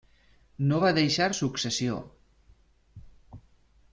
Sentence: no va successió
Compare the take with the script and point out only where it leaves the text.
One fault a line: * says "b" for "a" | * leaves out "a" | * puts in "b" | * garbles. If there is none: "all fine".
* puts in "deixar"